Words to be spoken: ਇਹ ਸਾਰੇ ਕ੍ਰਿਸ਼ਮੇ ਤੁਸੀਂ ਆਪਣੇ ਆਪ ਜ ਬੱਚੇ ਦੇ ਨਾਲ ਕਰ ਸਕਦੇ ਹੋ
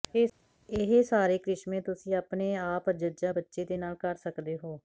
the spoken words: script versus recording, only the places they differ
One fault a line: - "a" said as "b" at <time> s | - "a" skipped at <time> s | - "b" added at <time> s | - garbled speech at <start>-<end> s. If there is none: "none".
none